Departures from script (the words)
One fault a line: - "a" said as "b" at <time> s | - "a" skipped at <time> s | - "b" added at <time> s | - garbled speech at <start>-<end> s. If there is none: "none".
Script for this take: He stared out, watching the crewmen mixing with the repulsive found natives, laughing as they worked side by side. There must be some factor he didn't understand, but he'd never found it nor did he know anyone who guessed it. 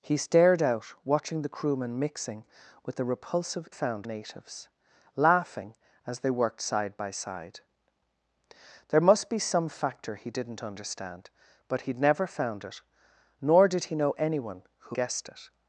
none